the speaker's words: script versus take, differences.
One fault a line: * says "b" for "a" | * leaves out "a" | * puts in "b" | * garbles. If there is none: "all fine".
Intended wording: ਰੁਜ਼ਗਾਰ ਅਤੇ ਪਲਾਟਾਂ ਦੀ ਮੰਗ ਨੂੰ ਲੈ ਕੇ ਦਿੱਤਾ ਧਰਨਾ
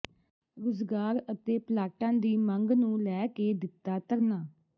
all fine